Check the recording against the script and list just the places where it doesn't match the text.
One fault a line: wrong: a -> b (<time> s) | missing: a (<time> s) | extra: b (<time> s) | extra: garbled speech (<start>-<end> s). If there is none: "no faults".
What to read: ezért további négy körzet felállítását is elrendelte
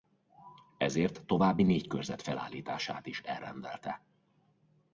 no faults